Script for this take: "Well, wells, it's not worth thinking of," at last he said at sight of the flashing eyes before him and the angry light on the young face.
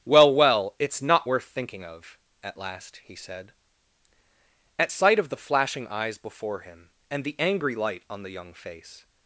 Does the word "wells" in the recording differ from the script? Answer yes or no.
yes